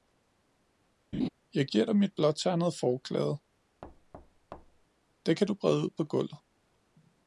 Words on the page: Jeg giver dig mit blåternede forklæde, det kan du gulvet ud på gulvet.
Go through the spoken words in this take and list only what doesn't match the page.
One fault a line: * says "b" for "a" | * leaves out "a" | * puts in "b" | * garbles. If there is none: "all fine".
* says "brede" for "gulvet"